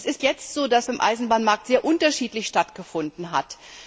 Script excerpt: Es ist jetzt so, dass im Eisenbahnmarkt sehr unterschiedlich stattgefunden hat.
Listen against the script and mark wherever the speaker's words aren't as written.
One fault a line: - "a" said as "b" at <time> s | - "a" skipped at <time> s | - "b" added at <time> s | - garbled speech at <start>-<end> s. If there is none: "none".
none